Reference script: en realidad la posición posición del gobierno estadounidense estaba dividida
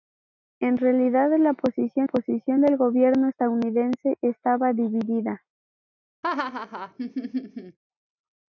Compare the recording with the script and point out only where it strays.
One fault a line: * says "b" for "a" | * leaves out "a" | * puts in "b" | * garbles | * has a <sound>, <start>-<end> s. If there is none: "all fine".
* has a laugh, 6.2-7.8 s